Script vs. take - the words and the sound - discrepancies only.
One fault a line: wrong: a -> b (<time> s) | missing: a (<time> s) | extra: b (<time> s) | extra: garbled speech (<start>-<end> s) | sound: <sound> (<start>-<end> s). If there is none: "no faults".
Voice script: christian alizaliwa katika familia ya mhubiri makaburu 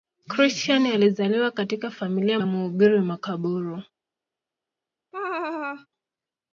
sound: laugh (5.1-5.9 s)